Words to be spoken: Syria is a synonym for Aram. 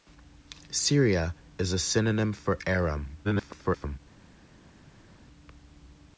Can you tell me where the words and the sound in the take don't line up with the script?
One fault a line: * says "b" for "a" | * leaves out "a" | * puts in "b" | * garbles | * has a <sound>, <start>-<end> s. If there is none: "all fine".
* garbles